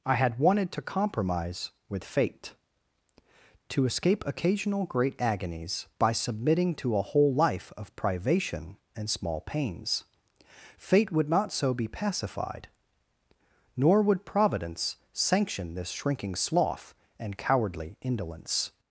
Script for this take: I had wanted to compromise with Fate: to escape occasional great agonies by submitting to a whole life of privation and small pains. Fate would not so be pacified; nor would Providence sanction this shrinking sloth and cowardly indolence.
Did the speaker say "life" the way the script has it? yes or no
yes